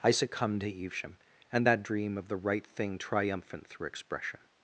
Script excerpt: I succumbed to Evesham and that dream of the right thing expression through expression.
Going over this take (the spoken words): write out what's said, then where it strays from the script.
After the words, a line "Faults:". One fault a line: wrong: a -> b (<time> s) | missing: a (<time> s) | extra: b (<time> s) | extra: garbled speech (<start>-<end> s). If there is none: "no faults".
I succumbed to Evesham and that dream of the right thing triumphant through expression.
Faults:
wrong: expression -> triumphant (3.0 s)